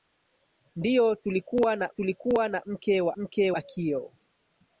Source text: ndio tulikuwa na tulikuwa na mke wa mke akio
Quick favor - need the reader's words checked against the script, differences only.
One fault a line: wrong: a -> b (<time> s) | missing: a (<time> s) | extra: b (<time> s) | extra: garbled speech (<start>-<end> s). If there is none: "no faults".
no faults